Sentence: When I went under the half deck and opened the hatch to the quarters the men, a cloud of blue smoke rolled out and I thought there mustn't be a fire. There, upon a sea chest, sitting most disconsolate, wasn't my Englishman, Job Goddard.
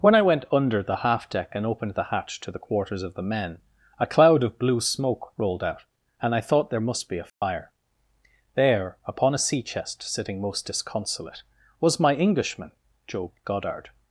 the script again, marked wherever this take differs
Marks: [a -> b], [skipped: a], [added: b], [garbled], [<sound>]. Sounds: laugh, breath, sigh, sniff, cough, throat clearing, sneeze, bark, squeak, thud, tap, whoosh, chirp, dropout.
When I went under the half deck and opened the hatch to the quarters [added: of] the men, a cloud of blue smoke rolled out and I thought there [mustn't -> must] be a fire. [dropout] There, upon a sea chest, sitting most disconsolate, [wasn't -> was] my Englishman, Job Goddard.